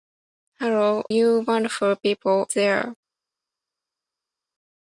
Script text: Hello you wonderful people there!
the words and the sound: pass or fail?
pass